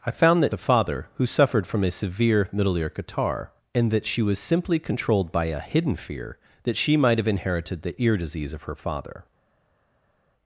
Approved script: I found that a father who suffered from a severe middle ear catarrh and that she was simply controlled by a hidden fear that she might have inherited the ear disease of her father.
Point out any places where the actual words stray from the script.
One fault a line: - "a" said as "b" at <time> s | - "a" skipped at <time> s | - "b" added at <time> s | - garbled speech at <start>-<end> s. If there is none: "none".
none